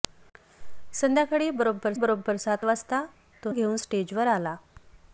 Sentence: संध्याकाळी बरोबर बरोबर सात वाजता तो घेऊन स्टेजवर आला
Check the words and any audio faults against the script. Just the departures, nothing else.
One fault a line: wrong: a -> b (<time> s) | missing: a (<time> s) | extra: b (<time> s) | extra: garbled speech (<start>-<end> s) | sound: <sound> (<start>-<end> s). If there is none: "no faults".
no faults